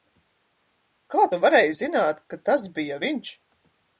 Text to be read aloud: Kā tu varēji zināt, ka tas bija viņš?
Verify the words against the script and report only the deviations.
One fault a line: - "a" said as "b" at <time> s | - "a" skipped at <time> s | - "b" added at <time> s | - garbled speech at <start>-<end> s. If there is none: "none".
none